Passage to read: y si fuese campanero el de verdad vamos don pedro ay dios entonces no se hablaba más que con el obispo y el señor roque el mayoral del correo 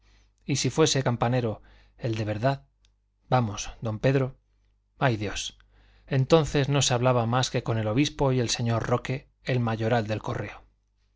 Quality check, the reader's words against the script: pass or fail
pass